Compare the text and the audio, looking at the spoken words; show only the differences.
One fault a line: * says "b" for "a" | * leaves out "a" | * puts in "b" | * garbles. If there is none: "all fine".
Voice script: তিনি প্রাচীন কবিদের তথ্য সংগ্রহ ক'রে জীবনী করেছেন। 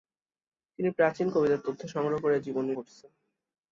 all fine